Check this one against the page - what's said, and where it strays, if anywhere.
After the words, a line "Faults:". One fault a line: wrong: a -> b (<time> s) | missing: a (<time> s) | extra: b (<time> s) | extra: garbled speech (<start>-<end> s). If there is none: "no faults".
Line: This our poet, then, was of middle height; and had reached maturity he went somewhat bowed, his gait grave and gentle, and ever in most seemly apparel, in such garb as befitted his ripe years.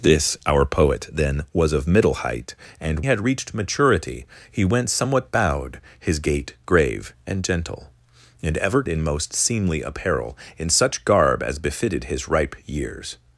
This our poet, then, was of middle height; and had reached maturity he went somewhat bowed, his gait grave and gentle, and ever in most seemly apparel, in such garb as befitted his ripe years.
Faults:
no faults